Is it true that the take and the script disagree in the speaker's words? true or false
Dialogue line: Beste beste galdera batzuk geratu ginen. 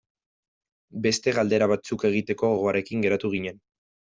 true